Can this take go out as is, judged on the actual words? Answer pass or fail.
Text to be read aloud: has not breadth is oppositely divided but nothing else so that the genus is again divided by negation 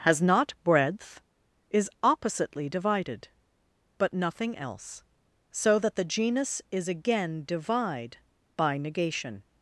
fail